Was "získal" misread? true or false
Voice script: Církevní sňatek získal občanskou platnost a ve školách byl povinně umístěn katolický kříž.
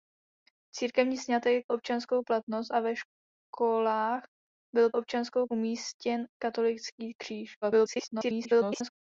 true